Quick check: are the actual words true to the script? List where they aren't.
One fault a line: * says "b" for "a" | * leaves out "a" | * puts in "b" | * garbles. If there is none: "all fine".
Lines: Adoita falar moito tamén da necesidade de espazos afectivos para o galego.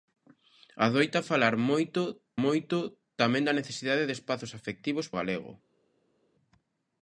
* puts in "moito"
* leaves out "para"